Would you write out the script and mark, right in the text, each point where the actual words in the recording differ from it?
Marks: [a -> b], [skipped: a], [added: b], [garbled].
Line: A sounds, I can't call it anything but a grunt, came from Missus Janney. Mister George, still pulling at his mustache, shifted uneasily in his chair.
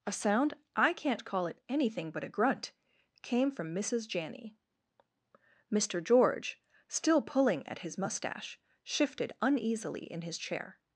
A [sounds, -> sound] I can't call it anything but a grunt, came from Missus Janney. Mister George, still pulling at his mustache, shifted uneasily in his chair.